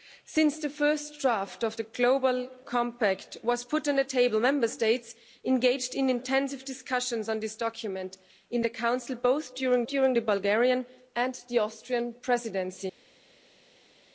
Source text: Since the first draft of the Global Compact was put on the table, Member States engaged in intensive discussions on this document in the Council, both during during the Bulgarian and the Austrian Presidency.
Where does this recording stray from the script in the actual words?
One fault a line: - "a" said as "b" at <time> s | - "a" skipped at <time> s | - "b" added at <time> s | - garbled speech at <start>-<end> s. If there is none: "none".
none